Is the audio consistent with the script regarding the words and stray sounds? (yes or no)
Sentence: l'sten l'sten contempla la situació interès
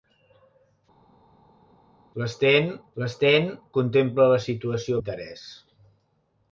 yes